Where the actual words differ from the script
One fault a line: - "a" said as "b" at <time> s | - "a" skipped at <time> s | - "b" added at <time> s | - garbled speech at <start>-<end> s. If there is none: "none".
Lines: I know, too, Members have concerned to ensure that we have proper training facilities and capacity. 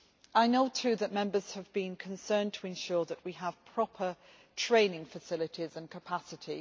- "that" added at 0.9 s
- "been" added at 1.7 s